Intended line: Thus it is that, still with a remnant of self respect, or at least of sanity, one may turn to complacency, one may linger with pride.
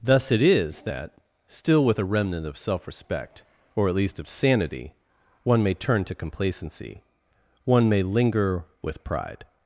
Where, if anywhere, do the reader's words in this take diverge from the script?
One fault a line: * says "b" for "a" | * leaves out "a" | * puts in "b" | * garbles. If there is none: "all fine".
all fine